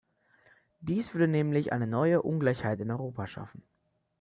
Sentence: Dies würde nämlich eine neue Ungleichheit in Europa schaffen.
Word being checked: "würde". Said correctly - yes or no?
yes